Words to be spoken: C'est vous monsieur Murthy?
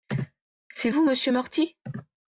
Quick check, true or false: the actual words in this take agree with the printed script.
true